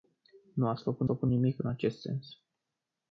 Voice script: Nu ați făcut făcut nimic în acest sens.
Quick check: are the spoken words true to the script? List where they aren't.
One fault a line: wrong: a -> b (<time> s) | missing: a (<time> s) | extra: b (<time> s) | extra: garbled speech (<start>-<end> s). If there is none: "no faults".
no faults